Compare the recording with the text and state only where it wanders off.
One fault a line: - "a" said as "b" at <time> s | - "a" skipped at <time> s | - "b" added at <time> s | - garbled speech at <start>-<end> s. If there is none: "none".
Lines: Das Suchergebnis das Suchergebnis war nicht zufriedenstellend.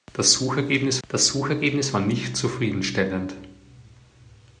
none